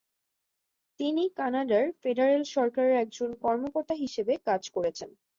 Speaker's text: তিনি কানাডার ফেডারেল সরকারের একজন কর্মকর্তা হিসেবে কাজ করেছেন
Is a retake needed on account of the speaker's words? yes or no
no